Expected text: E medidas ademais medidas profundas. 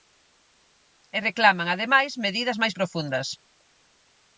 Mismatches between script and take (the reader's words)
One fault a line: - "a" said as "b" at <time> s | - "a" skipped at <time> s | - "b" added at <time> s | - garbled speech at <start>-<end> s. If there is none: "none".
- "medidas" said as "reclaman" at 1.3 s
- "máis" added at 2.6 s